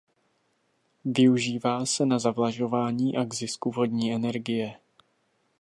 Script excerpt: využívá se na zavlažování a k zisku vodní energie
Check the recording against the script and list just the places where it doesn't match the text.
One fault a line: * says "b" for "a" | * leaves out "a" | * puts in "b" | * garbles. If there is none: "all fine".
all fine